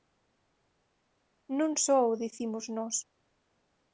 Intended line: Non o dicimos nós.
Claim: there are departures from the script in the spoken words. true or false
true